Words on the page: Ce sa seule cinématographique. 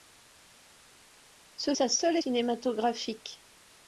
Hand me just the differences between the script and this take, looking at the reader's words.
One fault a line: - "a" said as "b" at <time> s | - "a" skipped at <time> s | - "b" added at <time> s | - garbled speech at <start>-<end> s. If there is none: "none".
none